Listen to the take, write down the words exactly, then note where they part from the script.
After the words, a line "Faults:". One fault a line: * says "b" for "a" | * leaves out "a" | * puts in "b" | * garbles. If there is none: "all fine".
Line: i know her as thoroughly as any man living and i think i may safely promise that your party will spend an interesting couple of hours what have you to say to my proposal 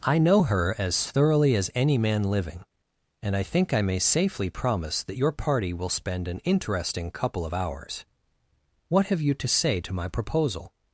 i know her as thoroughly as any man living and i think i may safely promise that your party will spend an interesting couple of hours what have you to say to my proposal
Faults:
all fine